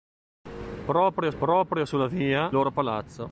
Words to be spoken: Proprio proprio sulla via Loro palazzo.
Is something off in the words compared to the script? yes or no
no